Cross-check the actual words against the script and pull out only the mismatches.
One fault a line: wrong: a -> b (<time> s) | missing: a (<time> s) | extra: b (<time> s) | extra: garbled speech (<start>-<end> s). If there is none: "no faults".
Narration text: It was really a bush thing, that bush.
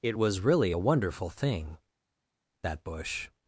wrong: bush -> wonderful (0.8 s)